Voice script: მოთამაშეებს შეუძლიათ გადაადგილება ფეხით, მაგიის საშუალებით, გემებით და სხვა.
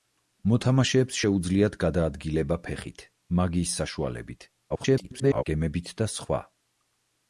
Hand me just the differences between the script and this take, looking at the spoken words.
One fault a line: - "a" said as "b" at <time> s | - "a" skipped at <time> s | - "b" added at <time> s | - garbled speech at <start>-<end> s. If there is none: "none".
- garbled speech at 4.7-5.4 s